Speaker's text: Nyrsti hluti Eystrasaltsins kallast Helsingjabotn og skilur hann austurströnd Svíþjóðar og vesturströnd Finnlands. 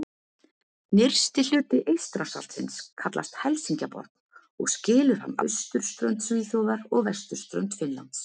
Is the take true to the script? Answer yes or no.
yes